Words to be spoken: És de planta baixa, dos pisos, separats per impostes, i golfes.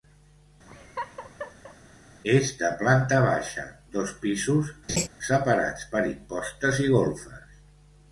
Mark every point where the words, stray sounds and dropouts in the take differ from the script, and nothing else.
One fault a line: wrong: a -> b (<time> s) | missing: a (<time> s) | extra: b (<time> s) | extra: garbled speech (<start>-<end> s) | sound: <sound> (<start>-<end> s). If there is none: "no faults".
sound: laugh (0.7-1.8 s)
sound: laugh (4.9-5.1 s)